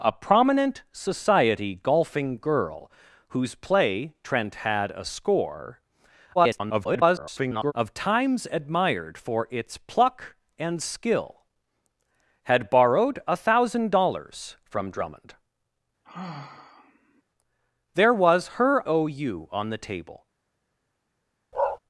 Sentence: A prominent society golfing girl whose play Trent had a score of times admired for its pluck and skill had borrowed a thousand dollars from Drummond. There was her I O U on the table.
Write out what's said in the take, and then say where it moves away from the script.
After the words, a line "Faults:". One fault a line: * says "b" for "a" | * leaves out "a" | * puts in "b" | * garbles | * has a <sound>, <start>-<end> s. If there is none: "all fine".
A prominent society golfing girl whose play Trent had a score [garbled] of times admired for its pluck and skill had borrowed a thousand dollars from Drummond. There was her O U on the table.
Faults:
* garbles
* has a sigh, 16.0-17.2 s
* leaves out "I"
* has a bark, 21.5-21.8 s